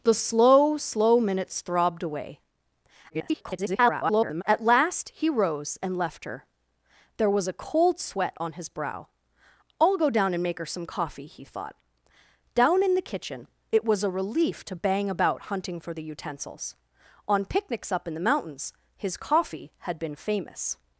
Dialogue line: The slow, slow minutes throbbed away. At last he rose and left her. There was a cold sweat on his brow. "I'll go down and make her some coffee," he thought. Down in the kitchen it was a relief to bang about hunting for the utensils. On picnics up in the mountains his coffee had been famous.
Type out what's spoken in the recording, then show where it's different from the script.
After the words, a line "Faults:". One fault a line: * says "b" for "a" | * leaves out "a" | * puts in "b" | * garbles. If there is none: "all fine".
The slow, slow minutes throbbed away. [garbled] At last he rose and left her. There was a cold sweat on his brow. "I'll go down and make her some coffee," he thought. Down in the kitchen it was a relief to bang about hunting for the utensils. On picnics up in the mountains his coffee had been famous.
Faults:
* garbles